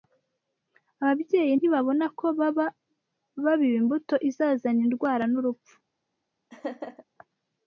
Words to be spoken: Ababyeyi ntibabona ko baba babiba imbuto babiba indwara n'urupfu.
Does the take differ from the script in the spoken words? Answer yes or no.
yes